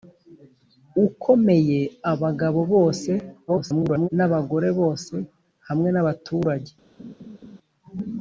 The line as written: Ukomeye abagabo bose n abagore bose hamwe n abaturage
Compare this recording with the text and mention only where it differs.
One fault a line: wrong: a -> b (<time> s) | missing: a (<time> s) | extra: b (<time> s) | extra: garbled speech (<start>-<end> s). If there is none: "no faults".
extra: garbled speech (3.5-4.1 s)